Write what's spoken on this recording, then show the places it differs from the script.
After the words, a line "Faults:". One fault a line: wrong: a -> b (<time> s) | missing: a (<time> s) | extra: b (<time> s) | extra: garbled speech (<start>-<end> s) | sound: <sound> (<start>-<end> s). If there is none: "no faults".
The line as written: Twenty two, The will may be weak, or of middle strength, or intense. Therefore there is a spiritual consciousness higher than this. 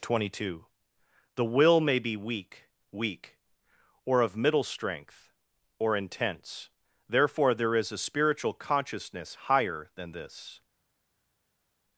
Twenty two, The will may be weak weak, or of middle strength, or intense. Therefore there is a spiritual consciousness higher than this.
Faults:
extra: weak (2.9 s)